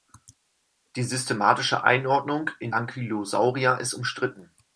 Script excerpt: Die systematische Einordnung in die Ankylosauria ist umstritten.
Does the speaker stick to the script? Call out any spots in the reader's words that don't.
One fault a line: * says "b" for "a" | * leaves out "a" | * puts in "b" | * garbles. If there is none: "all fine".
* leaves out "die"